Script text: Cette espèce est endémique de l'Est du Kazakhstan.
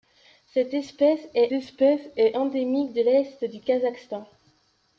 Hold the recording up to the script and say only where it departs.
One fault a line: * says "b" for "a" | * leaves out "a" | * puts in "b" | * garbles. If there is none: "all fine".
* puts in "espèce est"